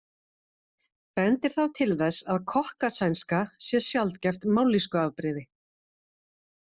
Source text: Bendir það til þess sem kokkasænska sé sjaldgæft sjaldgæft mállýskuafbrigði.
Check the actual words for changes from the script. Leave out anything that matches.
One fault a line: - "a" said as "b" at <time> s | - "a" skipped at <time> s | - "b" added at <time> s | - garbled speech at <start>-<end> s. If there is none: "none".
- "sem" said as "að" at 2.3 s
- "sjaldgæft" skipped at 4.5 s